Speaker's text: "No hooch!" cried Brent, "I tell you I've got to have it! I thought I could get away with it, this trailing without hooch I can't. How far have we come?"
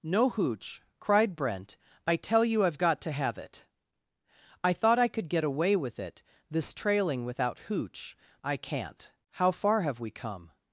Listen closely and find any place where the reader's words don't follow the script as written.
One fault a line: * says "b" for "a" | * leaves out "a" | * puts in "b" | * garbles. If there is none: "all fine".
all fine